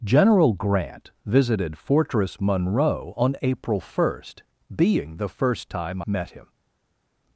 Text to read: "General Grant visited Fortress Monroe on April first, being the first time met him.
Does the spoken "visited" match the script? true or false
true